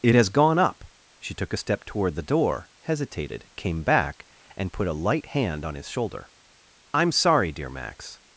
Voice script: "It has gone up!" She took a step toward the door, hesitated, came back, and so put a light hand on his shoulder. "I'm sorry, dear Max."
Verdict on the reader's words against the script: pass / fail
fail